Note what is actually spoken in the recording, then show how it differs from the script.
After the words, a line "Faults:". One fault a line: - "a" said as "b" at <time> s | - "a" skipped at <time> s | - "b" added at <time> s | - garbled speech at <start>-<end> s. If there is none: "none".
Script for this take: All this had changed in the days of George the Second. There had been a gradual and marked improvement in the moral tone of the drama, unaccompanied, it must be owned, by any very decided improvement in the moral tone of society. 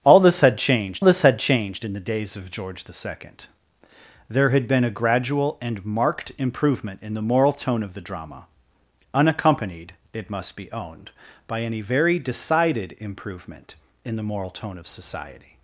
All this had changed this had changed in the days of George the Second. There had been a gradual and marked improvement in the moral tone of the drama, unaccompanied, it must be owned, by any very decided improvement in the moral tone of society.
Faults:
- "this had changed" added at 1.0 s